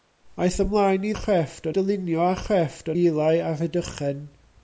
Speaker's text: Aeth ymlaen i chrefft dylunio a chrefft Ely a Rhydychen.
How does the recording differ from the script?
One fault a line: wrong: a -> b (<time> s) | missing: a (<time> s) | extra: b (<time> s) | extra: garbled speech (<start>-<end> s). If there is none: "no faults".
no faults